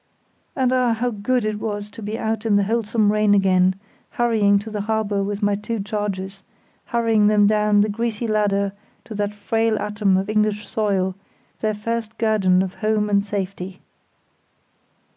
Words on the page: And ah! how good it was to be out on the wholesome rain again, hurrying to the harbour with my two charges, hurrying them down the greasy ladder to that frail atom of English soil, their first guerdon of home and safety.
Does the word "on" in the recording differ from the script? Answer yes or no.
yes